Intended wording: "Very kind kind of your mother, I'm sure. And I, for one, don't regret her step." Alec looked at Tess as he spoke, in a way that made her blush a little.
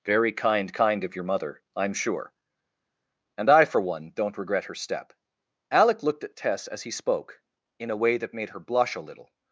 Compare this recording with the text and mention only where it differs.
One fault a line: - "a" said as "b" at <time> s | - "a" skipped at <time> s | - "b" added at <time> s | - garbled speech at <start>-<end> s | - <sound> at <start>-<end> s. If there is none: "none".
none